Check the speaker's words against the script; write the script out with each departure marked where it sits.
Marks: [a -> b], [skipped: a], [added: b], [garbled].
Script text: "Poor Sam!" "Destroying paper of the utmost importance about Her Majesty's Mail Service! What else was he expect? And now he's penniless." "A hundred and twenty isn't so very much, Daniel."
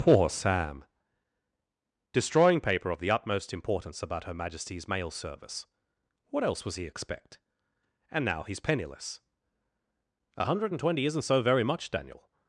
"Poor Sam!" "Destroying paper of the utmost importance about Her Majesty's Mail Service! What else was he expect? And now he's penniless." "A hundred and twenty isn't so very much, Daniel."